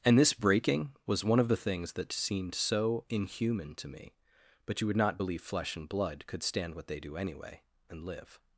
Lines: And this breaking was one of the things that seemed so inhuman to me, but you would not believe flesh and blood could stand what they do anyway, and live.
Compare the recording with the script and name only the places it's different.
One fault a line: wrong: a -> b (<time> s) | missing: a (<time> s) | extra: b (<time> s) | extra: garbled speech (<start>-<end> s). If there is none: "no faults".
no faults